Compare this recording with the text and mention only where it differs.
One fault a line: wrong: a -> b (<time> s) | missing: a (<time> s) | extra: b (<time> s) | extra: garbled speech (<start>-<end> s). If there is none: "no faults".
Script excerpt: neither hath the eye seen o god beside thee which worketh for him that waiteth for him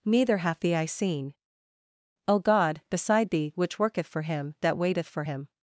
no faults